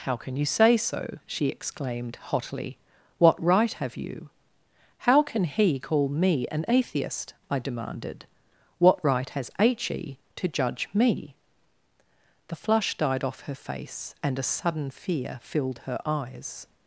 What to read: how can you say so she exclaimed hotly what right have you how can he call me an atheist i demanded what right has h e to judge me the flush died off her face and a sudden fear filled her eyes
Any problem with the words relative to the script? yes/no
no